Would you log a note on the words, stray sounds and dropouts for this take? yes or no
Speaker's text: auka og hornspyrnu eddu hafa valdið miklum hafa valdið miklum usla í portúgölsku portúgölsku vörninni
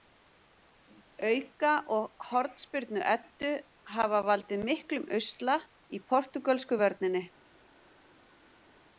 yes